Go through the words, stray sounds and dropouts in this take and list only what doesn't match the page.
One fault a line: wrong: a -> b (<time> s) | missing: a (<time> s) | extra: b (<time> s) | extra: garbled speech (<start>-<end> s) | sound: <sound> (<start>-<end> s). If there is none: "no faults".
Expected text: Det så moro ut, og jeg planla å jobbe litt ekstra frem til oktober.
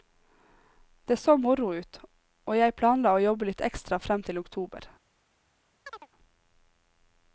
sound: chirp (5.9-6.1 s)